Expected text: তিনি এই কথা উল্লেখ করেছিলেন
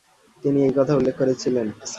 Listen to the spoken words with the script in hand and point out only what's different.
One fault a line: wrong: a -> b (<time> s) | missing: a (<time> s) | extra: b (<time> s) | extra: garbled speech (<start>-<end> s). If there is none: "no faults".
no faults